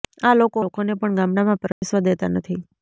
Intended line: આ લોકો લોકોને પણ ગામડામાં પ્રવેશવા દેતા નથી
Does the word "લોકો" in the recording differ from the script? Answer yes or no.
no